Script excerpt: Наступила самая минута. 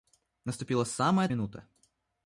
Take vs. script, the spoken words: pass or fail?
pass